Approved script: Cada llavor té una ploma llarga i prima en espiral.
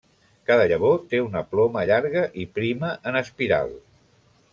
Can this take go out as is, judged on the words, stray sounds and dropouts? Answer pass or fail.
pass